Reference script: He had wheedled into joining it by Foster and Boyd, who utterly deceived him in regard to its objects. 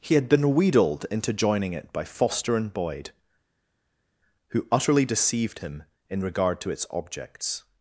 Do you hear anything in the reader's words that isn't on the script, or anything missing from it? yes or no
yes